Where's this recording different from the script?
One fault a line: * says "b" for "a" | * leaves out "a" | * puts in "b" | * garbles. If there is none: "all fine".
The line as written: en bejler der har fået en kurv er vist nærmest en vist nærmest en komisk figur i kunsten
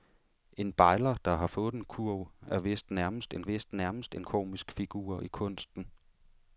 all fine